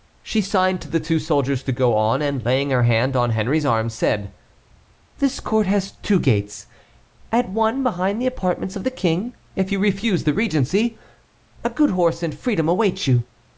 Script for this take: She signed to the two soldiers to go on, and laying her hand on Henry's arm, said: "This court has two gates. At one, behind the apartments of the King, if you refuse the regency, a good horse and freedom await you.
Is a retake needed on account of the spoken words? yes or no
no